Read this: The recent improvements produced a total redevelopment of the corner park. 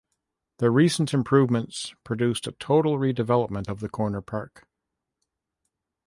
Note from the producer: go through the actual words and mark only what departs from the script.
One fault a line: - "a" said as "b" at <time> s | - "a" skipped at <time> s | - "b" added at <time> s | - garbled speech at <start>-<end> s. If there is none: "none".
none